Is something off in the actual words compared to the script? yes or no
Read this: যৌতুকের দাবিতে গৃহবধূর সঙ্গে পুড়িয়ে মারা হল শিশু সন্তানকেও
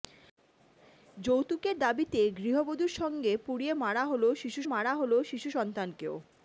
yes